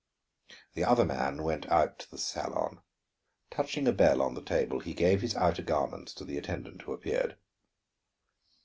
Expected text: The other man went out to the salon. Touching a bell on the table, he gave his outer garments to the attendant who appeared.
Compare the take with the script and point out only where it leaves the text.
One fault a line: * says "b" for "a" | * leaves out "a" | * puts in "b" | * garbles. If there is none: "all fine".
all fine